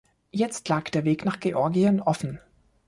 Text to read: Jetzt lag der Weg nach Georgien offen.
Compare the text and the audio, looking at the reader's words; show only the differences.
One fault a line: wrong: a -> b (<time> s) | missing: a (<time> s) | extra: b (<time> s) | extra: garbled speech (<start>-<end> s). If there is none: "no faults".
no faults